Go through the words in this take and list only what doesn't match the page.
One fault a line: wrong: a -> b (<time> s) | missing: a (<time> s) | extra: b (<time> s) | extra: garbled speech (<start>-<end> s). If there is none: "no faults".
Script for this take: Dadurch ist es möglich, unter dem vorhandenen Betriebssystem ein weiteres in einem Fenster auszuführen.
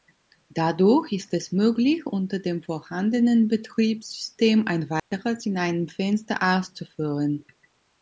no faults